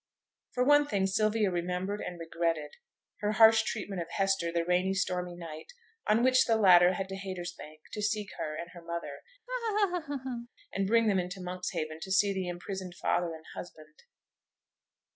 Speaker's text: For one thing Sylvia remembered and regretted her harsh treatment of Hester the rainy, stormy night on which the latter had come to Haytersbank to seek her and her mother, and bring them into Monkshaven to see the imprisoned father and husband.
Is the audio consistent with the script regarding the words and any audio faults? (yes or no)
no